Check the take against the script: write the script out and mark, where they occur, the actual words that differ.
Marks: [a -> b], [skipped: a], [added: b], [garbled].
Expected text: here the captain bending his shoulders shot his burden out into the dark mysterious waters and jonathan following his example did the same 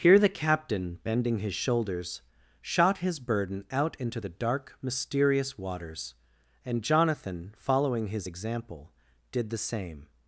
here the captain bending his shoulders shot his burden out into the dark mysterious waters and jonathan following his example did the same